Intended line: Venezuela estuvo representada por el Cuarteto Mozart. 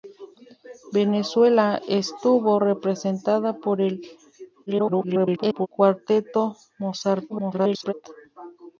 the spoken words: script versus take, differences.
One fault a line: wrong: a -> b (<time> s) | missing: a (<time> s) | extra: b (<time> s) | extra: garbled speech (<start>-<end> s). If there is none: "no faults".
extra: garbled speech (4.7-5.7 s)
extra: garbled speech (7.3-7.9 s)